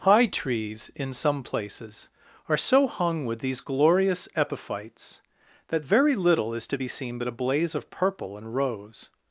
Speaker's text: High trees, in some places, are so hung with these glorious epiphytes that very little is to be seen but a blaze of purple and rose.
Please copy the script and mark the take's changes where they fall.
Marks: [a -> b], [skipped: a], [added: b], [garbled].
High trees, in some places, are so hung with these glorious epiphytes that very little is to be seen but a blaze of purple and rose.